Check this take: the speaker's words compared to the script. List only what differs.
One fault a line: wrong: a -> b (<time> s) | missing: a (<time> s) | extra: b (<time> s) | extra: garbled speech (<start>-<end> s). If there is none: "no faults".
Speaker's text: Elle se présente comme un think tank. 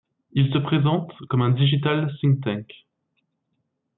wrong: Elle -> Il (0.3 s)
extra: digital (1.5 s)